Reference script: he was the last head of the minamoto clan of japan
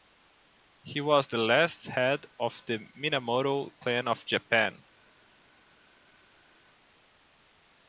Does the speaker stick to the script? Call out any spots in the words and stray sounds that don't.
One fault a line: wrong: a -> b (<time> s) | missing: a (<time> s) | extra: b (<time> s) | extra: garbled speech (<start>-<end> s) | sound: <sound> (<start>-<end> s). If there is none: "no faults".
no faults